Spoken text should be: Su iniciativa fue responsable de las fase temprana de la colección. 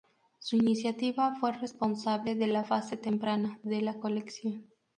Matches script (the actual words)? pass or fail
fail